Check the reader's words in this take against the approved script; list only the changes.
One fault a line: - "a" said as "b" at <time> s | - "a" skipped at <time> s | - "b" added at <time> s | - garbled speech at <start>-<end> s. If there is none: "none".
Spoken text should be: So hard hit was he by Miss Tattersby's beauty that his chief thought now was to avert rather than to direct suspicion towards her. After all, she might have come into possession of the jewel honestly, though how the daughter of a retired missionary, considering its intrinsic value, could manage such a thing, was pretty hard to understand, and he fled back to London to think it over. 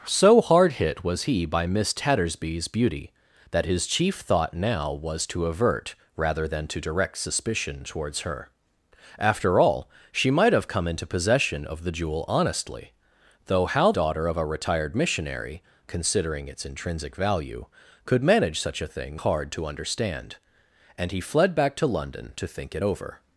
- "the" skipped at 13.9 s
- "was pretty" skipped at 19.2 s